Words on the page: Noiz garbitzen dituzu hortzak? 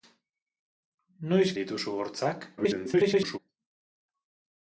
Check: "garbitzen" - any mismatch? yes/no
yes